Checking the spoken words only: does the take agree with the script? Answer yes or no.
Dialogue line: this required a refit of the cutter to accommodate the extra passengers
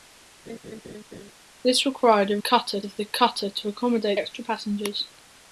no